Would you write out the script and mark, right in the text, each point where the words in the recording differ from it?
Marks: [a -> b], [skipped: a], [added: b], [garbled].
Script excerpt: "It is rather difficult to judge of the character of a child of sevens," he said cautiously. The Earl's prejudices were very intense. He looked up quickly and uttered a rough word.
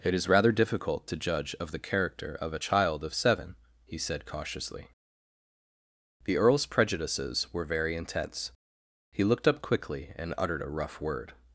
"It is rather difficult to judge of the character of a child of [sevens," -> seven] he said cautiously. The Earl's prejudices were very intense. He looked up quickly and uttered a rough word.